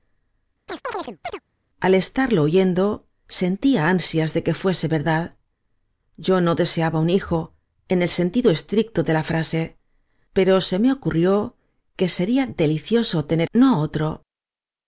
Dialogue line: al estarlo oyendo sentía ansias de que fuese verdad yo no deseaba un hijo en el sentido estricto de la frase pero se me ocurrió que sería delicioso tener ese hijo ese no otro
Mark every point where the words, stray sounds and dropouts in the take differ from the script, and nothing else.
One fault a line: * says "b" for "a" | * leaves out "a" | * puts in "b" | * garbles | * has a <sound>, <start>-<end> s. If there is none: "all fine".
* has a chirp, 0.7-1.4 s
* leaves out "ese hijo ese"